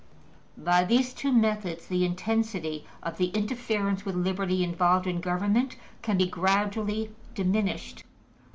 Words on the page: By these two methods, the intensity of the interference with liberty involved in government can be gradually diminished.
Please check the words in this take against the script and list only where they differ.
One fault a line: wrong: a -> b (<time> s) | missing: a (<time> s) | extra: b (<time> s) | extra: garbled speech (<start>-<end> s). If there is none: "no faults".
no faults